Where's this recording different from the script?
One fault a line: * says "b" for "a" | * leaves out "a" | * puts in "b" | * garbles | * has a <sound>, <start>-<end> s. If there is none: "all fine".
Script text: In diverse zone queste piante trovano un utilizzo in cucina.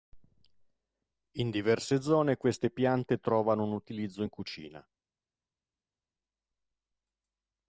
all fine